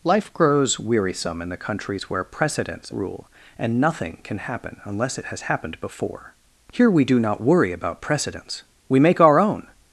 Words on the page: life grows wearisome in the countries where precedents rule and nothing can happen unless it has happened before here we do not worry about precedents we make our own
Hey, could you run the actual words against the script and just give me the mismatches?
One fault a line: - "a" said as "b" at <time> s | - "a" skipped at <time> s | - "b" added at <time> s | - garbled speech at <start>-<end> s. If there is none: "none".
none